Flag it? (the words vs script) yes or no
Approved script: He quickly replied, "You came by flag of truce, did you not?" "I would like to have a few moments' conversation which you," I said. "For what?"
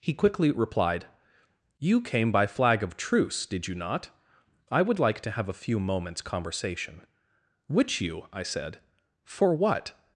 no